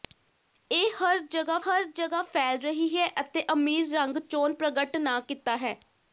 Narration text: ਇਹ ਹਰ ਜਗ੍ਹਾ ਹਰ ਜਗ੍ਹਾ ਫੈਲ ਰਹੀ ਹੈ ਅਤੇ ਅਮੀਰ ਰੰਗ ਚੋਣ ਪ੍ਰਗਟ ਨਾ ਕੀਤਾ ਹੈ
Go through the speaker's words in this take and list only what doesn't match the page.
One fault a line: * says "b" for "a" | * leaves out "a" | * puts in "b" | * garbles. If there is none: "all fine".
all fine